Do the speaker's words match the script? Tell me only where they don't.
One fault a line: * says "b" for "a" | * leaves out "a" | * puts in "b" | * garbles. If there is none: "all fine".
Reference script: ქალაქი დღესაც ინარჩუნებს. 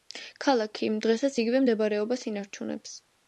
* puts in "იგივე მდებარეობას"